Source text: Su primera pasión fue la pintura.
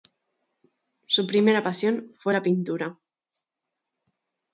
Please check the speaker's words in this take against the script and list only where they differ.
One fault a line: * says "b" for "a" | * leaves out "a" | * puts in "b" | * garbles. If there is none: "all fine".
all fine